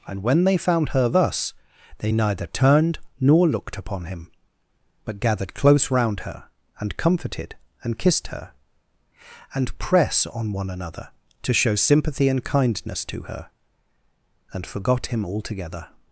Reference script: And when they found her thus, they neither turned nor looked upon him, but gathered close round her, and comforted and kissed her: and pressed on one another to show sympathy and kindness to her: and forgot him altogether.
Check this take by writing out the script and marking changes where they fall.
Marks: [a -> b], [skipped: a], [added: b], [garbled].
And when they found her thus, they neither turned nor looked upon him, but gathered close round her, and comforted and kissed her: and [pressed -> press] on one another to show sympathy and kindness to her: and forgot him altogether.